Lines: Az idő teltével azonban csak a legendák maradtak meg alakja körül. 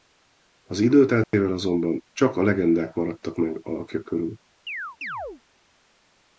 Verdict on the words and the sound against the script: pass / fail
fail